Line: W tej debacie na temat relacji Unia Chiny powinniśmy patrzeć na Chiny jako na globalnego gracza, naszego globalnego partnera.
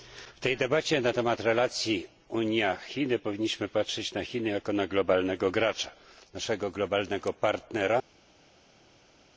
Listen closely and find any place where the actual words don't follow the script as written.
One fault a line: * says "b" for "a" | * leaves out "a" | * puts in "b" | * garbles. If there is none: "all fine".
all fine